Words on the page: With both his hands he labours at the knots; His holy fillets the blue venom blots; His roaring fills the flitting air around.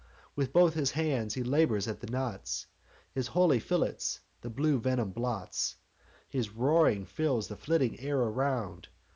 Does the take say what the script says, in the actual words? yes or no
yes